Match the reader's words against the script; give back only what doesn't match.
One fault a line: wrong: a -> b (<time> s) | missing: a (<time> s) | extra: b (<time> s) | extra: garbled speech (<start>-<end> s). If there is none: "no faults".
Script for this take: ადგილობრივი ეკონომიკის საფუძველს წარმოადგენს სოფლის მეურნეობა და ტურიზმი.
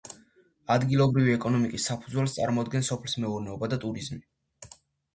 no faults